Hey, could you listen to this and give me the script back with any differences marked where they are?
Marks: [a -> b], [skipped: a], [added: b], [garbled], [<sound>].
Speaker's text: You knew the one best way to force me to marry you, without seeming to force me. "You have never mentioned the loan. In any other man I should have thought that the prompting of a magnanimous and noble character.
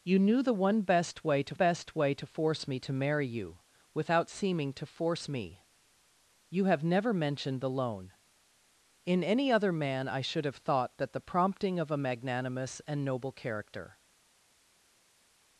You knew the one best way to [added: best way to] force me to marry you, without seeming to force me. "You have never mentioned the loan. In any other man I should have thought that the prompting of a magnanimous and noble character.